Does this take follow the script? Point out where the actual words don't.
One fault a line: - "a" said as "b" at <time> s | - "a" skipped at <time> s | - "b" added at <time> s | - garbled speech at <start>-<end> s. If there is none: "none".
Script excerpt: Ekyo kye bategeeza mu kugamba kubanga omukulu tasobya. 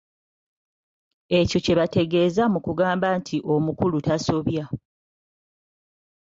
- "kubanga" said as "nti" at 3.2 s